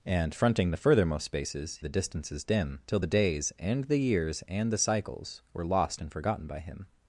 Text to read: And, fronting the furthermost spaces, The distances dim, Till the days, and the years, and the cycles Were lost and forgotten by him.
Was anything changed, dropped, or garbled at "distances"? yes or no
no